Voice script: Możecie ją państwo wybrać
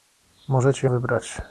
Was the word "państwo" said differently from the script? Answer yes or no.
yes